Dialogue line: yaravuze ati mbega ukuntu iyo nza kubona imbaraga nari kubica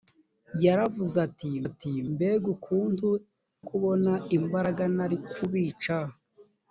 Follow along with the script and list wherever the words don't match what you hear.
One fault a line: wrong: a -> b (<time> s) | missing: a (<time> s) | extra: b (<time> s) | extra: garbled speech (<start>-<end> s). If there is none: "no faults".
extra: ati (1.7 s)
missing: iyo nza (3.1 s)